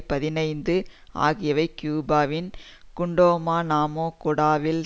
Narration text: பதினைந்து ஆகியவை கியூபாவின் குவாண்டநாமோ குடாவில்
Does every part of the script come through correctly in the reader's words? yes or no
yes